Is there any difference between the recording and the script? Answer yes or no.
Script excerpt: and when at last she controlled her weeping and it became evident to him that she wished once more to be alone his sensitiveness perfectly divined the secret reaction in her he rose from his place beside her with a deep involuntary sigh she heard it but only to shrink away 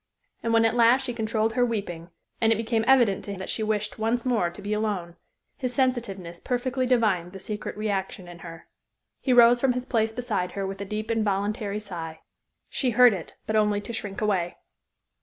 yes